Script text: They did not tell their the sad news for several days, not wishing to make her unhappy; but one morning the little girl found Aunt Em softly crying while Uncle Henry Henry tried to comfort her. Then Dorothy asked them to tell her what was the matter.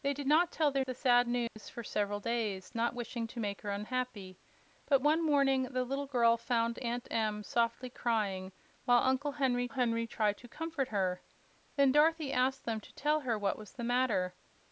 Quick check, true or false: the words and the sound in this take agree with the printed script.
false